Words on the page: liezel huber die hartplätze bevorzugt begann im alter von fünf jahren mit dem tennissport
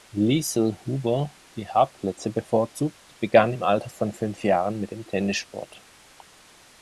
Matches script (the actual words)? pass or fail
pass